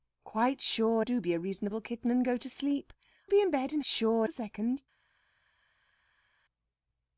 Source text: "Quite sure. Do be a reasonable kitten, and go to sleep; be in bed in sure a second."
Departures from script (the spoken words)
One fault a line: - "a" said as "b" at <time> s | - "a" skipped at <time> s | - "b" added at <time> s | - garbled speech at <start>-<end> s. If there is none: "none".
none